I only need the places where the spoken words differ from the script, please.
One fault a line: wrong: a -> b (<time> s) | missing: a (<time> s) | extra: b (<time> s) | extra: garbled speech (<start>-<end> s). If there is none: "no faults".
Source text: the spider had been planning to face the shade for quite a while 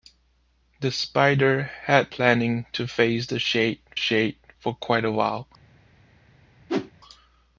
missing: been (2.1 s)
extra: shade (3.9 s)